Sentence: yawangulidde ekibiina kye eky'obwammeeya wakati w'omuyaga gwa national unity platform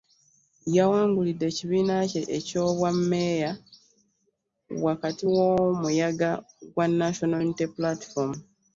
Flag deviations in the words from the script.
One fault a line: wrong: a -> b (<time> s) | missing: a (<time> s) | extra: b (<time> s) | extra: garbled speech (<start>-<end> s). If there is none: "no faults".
no faults